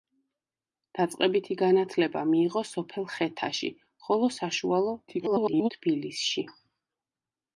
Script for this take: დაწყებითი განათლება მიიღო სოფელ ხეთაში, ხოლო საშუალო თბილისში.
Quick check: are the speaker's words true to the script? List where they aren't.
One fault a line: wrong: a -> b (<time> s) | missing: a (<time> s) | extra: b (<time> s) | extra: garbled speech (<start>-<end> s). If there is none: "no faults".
extra: garbled speech (5.1-5.7 s)